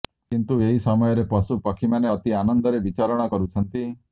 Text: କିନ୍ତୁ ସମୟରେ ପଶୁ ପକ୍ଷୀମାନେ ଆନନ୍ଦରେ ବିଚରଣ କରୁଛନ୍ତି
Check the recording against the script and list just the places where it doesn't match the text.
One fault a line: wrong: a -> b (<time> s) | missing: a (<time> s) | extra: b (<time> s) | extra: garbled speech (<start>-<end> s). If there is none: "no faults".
extra: ଏହି (0.7 s)
extra: ଅତି (2.1 s)